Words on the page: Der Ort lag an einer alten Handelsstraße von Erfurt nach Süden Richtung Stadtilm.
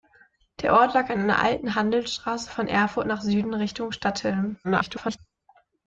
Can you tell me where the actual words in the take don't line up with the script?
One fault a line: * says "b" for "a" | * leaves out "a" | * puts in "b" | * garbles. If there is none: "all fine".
* garbles